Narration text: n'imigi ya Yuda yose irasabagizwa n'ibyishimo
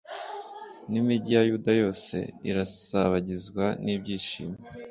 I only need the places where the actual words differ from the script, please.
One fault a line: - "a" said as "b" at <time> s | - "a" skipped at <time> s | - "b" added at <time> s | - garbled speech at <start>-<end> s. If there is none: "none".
none